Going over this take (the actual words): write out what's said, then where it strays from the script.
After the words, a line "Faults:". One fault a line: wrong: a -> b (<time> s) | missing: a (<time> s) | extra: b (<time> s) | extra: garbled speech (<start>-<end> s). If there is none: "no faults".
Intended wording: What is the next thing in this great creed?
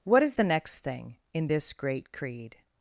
What is the next thing in this great creed?
Faults:
no faults